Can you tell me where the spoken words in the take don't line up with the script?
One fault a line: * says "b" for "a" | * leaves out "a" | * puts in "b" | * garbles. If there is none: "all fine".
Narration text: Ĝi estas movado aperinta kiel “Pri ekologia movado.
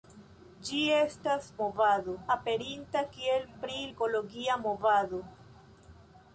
all fine